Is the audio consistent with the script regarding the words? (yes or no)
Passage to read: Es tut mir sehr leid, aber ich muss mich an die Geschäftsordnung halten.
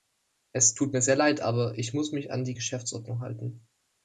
yes